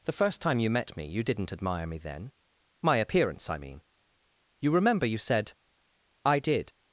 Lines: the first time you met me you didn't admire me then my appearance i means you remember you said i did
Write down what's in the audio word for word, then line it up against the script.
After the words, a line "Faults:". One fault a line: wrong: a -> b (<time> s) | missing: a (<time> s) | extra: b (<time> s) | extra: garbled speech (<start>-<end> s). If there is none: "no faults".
the first time you met me you didn't admire me then my appearance i mean you remember you said i did
Faults:
wrong: means -> mean (3.6 s)